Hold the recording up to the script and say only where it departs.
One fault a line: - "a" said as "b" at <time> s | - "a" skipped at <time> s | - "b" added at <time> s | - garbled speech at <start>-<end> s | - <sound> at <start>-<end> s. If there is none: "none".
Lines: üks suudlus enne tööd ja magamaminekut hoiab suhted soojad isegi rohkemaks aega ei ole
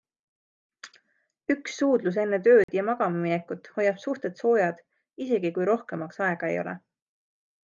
- dropout at 2.6-2.7 s
- "kui" added at 5.6 s